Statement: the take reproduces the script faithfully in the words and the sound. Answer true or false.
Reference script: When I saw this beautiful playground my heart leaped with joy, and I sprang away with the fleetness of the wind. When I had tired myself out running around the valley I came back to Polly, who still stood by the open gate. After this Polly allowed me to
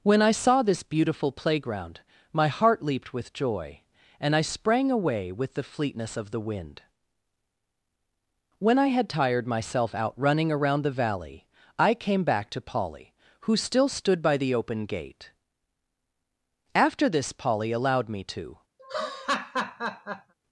false